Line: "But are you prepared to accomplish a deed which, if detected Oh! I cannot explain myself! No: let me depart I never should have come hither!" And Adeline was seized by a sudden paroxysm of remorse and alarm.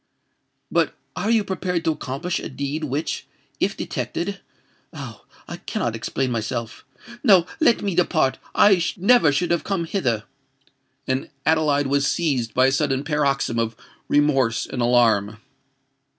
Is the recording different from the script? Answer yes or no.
no